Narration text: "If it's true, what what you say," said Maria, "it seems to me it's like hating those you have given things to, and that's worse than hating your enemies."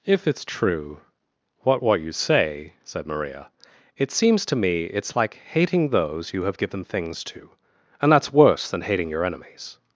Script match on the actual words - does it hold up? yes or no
yes